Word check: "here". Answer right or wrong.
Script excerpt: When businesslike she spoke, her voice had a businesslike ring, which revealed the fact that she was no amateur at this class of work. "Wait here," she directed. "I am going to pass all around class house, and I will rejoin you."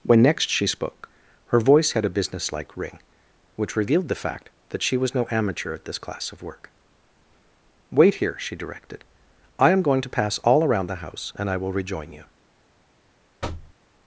right